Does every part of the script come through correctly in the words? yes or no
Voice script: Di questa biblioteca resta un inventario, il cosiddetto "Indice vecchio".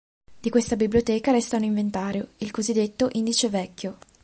yes